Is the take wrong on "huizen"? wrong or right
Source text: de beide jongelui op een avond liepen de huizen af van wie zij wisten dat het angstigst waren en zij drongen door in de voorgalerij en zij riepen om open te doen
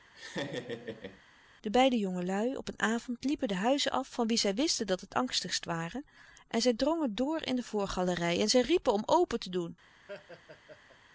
right